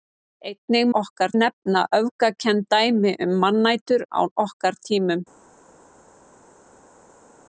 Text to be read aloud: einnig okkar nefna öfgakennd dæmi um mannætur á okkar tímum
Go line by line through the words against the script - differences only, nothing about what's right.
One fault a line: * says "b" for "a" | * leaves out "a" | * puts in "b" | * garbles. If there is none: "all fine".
all fine